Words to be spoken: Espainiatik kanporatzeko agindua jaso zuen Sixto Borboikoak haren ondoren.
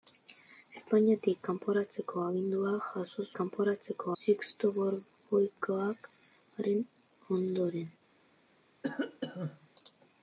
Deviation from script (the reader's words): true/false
true